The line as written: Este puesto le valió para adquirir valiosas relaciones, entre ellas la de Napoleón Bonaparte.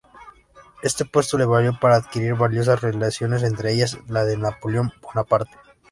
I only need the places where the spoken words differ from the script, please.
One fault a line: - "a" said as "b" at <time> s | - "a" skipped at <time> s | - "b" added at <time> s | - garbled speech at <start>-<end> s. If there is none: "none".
none